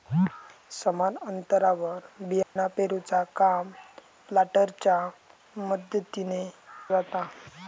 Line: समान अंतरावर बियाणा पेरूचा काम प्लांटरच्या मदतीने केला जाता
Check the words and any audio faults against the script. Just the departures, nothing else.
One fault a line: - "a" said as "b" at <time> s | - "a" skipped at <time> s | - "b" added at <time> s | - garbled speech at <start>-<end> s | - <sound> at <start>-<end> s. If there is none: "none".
- dropout at 2.4-2.6 s
- "केला" skipped at 6.4 s